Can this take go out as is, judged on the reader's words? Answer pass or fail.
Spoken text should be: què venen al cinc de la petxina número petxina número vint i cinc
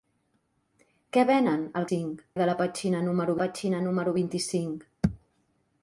pass